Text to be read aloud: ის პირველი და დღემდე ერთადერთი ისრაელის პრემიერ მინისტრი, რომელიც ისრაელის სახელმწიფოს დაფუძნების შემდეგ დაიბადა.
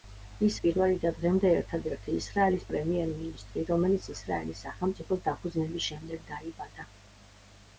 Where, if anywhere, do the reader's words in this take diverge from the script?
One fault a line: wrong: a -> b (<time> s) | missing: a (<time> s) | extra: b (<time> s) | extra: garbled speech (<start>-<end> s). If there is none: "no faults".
no faults